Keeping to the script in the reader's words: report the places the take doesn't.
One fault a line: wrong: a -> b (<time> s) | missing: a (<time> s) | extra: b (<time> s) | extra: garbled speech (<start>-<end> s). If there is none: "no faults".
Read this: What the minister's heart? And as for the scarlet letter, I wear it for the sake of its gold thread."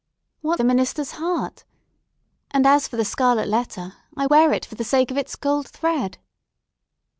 no faults